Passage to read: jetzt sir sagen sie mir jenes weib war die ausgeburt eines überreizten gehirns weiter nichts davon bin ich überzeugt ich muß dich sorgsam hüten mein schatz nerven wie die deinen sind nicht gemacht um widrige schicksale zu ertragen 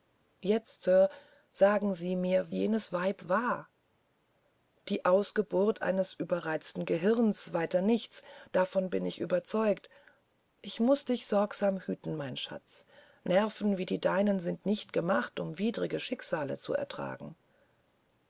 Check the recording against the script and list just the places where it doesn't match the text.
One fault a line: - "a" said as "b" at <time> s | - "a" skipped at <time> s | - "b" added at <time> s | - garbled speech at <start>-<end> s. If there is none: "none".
none